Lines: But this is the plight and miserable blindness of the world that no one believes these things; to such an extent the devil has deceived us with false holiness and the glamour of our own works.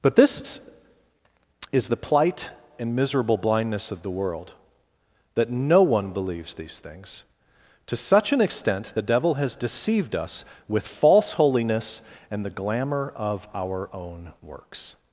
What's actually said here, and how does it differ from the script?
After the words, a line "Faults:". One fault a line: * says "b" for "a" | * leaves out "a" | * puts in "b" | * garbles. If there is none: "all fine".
But this is the plight and miserable blindness of the world that no one believes these things; to such an extent the devil has deceived us with false holiness and the glamour of our own works.
Faults:
all fine